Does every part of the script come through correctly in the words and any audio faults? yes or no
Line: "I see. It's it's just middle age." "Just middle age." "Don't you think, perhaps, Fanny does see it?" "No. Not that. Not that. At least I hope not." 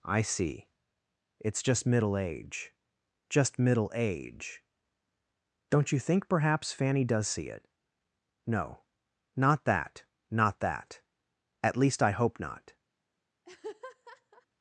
no